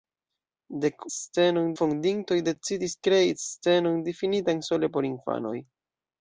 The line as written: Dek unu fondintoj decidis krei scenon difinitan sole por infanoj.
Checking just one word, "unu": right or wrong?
wrong